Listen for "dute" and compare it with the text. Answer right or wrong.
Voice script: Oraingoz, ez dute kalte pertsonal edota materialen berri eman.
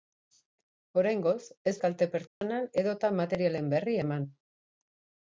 wrong